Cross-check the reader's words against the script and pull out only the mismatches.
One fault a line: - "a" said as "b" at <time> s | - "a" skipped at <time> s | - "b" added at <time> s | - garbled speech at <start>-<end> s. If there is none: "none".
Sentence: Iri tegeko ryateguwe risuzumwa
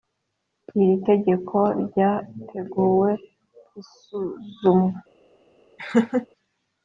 none